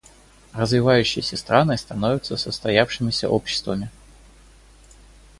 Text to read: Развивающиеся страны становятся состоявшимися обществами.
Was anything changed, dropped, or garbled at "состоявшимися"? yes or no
no